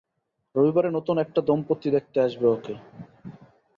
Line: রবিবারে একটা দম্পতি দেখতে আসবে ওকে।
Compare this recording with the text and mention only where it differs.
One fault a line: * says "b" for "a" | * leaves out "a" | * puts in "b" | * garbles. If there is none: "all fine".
* puts in "নতুন"